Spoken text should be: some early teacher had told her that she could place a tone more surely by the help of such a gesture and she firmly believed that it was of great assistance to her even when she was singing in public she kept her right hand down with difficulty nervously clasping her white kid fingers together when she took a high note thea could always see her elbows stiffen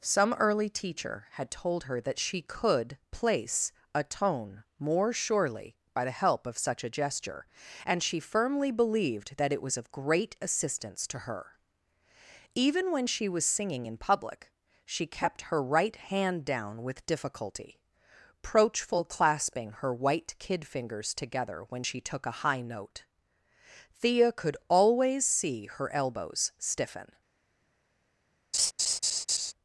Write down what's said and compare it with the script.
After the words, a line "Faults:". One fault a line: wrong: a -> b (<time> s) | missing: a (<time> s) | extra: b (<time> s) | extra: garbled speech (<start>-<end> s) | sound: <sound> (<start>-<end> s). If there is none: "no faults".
some early teacher had told her that she could place a tone more surely by the help of such a gesture and she firmly believed that it was of great assistance to her even when she was singing in public she kept her right hand down with difficulty proachful clasping her white kid fingers together when she took a high note thea could always see her elbows stiffen
Faults:
wrong: nervously -> proachful (18.4 s)
sound: laugh (28.5-29.5 s)